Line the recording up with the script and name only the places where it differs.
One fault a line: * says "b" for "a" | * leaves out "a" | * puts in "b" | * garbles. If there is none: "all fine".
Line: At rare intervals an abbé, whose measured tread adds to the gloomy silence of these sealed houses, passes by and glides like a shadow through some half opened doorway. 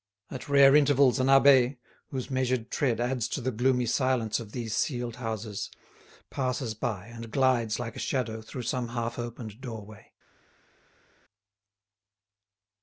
all fine